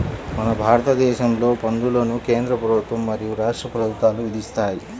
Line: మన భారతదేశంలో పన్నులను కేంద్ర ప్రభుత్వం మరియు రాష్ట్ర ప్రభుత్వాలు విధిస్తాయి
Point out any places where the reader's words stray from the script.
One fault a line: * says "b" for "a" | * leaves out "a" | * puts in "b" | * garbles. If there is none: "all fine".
all fine